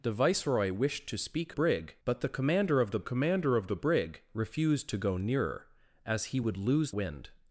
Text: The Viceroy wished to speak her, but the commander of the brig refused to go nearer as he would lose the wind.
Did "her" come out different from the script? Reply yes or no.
yes